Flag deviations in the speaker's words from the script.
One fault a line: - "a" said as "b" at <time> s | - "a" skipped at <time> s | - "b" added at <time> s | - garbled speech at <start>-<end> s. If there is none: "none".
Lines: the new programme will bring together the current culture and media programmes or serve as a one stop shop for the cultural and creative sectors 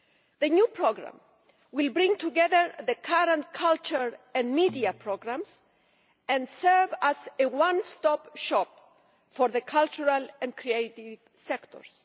- "or" said as "and" at 6.3 s